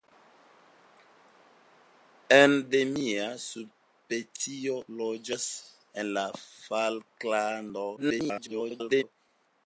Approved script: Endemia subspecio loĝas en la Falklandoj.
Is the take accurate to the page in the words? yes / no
no